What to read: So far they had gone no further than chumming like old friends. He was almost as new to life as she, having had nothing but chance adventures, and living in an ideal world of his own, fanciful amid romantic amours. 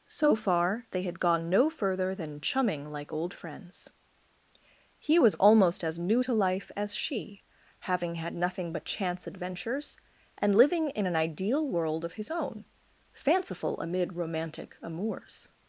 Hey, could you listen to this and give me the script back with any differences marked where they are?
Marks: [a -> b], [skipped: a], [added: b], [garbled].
So far they had gone no further than chumming like old friends. He was almost as new to life as she, having had nothing but chance adventures, and living in an ideal world of his own, fanciful amid romantic amours.